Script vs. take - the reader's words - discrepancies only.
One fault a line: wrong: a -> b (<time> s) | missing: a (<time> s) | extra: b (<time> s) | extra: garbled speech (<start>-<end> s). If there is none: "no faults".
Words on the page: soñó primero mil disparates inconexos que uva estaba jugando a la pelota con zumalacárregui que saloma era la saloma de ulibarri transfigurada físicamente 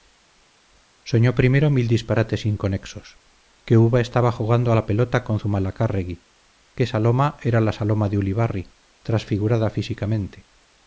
no faults